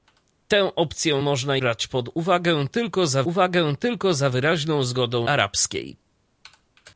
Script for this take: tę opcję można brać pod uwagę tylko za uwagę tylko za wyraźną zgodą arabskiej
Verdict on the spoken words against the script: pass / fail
pass